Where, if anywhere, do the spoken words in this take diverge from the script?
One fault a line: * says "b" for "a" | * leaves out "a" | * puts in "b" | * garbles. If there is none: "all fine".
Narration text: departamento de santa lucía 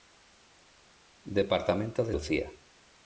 * leaves out "santa"